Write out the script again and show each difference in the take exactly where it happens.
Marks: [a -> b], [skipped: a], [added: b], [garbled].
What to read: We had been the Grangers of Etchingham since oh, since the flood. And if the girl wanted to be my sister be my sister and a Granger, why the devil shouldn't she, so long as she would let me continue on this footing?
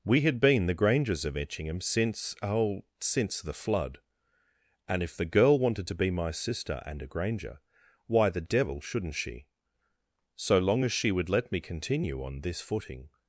We had been the Grangers of Etchingham since oh, since the flood. And if the girl wanted to be my sister [skipped: be my sister] and a Granger, why the devil shouldn't she, so long as she would let me continue on this footing?